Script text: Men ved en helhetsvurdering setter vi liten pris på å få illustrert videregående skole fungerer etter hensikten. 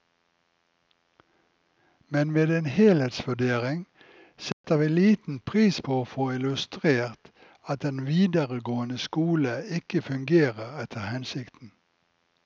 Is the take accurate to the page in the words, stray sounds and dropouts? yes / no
no